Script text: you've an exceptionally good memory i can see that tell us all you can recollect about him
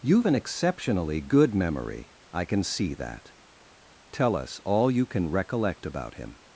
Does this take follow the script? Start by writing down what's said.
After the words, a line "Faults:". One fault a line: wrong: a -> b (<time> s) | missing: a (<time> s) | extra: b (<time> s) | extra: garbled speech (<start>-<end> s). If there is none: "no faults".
you've an exceptionally good memory i can see that tell us all you can recollect about him
Faults:
no faults